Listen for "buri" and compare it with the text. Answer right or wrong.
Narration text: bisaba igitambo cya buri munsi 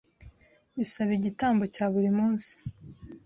right